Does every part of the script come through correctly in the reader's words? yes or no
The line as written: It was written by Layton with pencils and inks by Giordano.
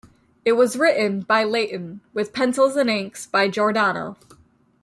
yes